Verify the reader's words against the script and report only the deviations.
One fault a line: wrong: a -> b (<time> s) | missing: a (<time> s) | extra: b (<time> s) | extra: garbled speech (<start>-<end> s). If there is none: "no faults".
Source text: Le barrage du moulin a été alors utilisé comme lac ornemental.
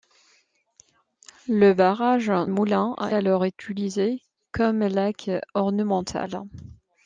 missing: du (2.3 s)
missing: été (3.1 s)